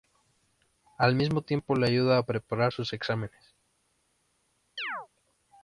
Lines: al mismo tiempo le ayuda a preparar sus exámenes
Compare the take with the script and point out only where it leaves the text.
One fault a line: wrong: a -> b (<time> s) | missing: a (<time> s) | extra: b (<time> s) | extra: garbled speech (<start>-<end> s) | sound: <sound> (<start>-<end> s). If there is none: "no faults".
sound: chirp (4.8-5.1 s)